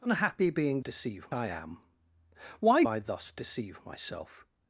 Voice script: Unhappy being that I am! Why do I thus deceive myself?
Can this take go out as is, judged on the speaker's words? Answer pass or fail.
fail